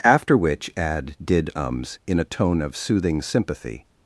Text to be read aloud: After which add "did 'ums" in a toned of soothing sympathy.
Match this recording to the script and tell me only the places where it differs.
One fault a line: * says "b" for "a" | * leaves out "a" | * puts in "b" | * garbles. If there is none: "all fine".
* says "tone" for "toned"